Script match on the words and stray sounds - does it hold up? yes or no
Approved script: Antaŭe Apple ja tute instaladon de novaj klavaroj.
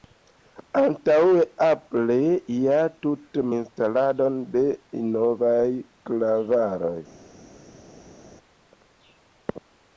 yes